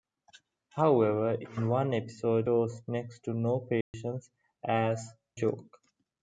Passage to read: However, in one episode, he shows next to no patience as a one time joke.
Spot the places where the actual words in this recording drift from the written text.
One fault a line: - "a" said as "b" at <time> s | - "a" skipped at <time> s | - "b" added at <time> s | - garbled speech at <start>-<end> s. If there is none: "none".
- "he" skipped at 2.5 s
- "a one time" skipped at 5.1 s